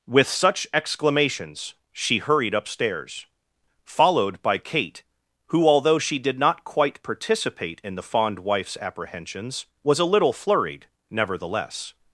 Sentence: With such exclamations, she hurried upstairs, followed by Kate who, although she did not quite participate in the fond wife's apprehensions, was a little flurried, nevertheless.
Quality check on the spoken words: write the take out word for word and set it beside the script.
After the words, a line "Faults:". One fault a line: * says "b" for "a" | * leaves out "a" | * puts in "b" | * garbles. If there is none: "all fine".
With such exclamations, she hurried upstairs, followed by Kate who, although she did not quite participate in the fond wife's apprehensions, was a little flurried, nevertheless.
Faults:
all fine